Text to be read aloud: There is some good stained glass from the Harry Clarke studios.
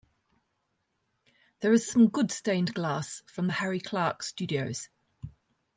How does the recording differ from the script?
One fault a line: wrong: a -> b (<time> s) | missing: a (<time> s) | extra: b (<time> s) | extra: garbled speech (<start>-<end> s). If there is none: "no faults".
no faults